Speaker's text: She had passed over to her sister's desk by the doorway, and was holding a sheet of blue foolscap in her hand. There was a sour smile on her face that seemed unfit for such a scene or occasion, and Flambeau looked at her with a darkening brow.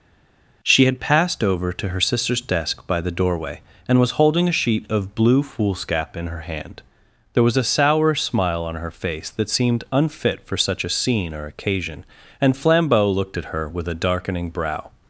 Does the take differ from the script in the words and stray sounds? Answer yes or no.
no